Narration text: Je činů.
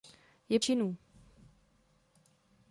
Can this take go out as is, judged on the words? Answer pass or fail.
pass